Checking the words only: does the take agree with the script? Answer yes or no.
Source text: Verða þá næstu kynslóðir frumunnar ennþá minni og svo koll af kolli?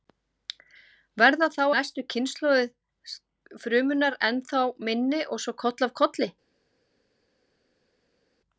yes